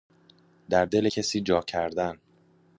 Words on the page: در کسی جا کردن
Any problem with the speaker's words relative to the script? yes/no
yes